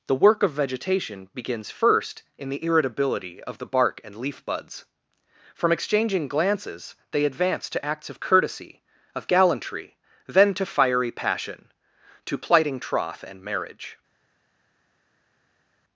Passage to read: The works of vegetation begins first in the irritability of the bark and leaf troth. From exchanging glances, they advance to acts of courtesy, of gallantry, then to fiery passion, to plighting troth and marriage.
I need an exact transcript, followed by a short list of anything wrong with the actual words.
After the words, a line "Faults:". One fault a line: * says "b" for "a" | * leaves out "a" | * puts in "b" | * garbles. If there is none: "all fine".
The work of vegetation begins first in the irritability of the bark and leaf buds. From exchanging glances, they advance to acts of courtesy, of gallantry, then to fiery passion, to plighting troth and marriage.
Faults:
* says "work" for "works"
* says "buds" for "troth"